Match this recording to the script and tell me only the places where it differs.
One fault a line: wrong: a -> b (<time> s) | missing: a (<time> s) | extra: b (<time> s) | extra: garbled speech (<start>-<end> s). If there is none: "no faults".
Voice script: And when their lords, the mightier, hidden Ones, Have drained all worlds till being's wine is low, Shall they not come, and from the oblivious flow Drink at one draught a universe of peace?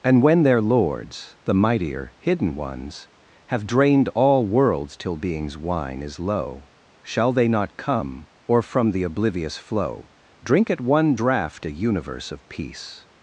wrong: and -> or (8.5 s)